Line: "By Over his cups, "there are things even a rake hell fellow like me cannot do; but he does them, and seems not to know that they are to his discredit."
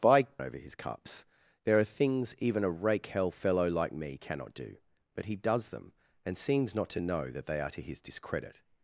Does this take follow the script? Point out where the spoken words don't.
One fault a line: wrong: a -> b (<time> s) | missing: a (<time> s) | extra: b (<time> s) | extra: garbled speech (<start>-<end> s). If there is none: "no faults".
no faults